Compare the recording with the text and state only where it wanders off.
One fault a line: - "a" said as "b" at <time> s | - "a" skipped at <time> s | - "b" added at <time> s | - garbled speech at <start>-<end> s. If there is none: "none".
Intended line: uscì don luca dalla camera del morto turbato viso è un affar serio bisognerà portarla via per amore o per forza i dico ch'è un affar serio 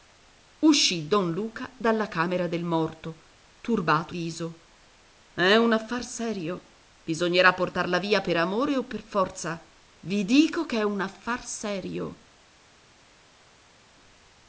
none